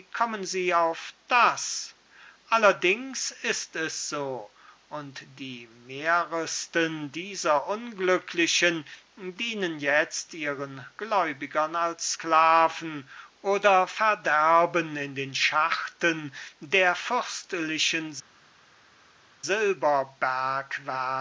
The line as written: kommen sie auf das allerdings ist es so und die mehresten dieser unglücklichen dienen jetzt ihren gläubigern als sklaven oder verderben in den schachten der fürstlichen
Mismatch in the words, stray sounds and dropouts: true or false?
false